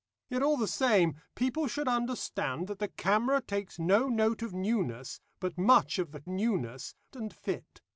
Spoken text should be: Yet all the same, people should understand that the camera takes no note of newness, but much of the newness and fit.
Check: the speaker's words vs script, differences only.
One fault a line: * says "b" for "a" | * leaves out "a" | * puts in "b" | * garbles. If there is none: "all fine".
all fine